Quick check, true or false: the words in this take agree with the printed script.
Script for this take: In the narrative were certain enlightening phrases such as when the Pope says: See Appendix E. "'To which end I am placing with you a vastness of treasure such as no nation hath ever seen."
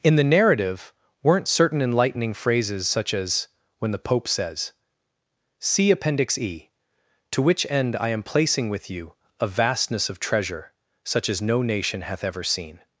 false